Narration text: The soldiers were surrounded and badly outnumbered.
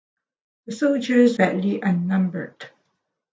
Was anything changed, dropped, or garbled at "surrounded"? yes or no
yes